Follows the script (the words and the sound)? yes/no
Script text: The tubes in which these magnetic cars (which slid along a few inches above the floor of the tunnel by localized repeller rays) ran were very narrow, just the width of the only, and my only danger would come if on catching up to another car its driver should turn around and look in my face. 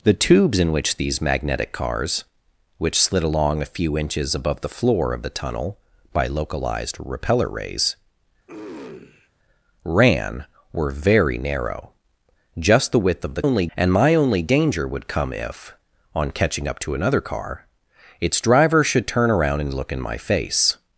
no